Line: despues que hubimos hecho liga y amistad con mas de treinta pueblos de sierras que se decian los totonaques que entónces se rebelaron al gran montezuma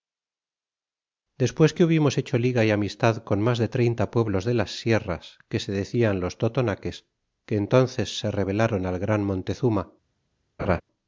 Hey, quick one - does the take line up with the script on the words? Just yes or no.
no